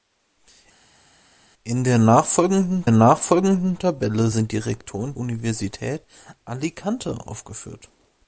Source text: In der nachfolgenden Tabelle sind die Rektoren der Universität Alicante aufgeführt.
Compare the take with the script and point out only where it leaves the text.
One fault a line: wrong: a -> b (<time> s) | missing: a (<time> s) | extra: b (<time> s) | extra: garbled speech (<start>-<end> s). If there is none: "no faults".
extra: nachfolgenden (2.9 s)
missing: der (5.1 s)